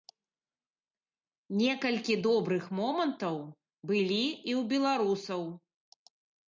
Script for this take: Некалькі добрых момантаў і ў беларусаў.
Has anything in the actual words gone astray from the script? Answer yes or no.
yes